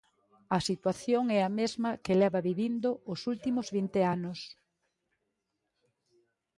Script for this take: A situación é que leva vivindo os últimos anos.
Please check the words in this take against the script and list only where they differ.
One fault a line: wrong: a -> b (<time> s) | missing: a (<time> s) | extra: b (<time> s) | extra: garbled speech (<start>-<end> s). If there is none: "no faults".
extra: a mesma (1.4 s)
extra: vinte (3.8 s)